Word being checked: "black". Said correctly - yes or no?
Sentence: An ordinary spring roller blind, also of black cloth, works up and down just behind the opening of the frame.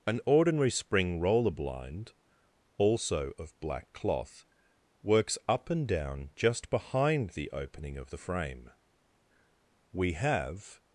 yes